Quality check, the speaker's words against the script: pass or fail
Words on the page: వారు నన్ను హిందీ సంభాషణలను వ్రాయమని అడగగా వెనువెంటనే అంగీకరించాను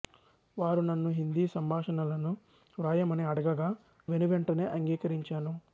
pass